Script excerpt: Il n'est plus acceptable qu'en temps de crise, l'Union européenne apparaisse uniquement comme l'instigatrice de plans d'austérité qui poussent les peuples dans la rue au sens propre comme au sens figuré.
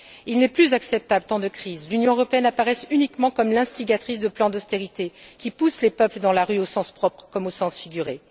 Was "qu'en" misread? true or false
true